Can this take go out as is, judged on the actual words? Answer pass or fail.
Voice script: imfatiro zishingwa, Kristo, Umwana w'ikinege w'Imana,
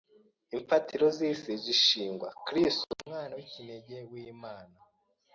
fail